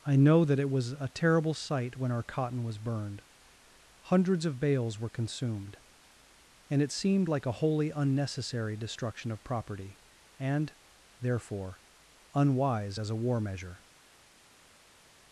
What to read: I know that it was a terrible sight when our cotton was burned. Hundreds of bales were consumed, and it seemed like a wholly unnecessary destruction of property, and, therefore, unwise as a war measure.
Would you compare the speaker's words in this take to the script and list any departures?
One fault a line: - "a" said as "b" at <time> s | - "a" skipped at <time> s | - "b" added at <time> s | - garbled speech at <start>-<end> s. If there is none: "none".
none